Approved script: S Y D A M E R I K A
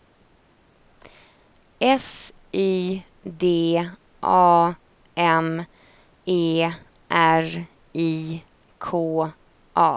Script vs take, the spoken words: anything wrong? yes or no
no